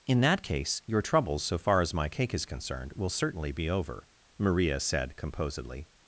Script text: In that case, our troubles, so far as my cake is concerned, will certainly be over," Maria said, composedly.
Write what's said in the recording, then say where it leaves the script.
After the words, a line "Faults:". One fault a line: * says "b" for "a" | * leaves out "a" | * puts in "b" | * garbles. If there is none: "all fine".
In that case, your troubles, so far as my cake is concerned, will certainly be over," Maria said, composedly.
Faults:
* says "your" for "our"